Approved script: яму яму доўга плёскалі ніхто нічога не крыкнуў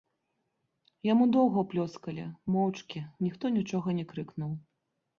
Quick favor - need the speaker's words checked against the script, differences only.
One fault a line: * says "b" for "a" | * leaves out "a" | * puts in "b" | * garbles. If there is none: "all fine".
* leaves out "яму"
* puts in "моўчкі"